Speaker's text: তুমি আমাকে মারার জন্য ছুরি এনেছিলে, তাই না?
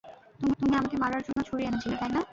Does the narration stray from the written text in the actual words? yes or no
yes